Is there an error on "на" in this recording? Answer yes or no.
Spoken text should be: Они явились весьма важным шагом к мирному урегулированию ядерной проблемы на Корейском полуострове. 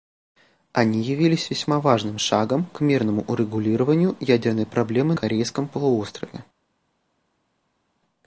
yes